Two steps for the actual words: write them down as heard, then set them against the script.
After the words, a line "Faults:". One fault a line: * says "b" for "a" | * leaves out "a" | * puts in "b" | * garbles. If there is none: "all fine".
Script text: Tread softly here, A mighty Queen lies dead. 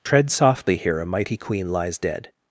Tread softly here, A mighty Queen lies dead.
Faults:
all fine